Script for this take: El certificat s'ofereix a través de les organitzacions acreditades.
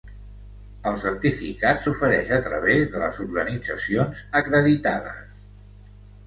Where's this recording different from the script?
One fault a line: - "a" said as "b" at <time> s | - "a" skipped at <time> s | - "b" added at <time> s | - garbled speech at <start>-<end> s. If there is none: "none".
none